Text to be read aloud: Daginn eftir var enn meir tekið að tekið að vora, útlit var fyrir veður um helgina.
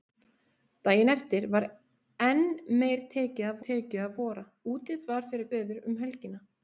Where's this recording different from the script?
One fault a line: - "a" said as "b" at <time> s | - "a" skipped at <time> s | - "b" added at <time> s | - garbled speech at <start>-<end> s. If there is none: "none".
none